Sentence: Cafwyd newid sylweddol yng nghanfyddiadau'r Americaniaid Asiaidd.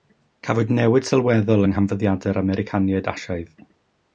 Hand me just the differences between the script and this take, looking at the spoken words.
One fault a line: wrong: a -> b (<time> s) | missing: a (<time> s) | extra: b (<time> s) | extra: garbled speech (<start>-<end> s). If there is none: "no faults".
no faults